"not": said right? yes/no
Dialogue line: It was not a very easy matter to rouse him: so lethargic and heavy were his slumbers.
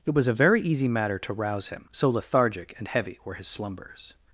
no